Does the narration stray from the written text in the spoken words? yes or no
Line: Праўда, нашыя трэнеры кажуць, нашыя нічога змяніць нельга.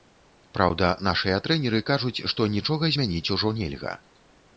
yes